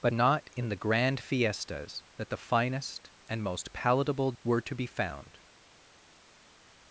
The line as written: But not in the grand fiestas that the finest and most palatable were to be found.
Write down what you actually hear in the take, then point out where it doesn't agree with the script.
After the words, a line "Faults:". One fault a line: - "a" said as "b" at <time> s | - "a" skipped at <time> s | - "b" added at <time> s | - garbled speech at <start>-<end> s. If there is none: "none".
But not in the grand fiestas that the finest and most palatable were to be found.
Faults:
none